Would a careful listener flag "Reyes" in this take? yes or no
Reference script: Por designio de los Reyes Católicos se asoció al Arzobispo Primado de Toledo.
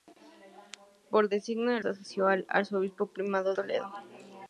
yes